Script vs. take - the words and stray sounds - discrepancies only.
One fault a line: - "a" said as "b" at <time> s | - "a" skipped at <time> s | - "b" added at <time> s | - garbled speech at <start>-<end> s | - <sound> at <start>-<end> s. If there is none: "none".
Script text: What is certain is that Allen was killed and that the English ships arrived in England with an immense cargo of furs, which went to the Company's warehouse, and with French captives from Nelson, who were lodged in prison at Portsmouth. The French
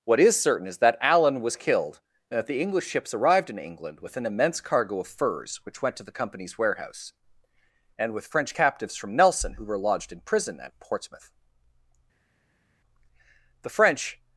none